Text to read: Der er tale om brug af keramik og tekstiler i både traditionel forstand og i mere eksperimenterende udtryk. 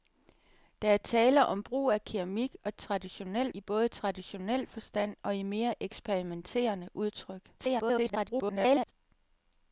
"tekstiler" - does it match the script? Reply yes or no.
no